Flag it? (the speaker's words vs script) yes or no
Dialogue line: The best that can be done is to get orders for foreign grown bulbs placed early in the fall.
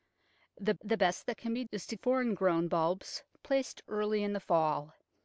yes